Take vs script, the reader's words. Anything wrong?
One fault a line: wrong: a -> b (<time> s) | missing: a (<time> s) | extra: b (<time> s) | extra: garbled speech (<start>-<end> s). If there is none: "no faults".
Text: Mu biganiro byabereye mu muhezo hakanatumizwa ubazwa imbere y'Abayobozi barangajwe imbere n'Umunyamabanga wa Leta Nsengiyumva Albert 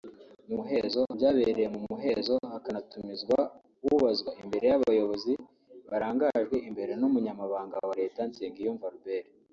wrong: biganiro -> muhezo (0.6 s)